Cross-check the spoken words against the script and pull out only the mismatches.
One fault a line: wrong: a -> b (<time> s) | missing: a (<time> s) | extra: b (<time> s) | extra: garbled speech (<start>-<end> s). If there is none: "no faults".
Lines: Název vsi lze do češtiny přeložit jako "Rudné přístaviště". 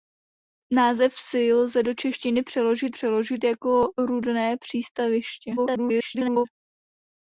extra: přeložit (2.9 s)
extra: garbled speech (5.6-6.5 s)